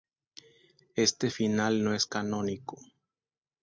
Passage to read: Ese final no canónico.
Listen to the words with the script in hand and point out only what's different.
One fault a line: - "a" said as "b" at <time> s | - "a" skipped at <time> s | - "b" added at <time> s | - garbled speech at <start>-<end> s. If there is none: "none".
- "Ese" said as "Este" at 0.9 s
- "es" added at 1.9 s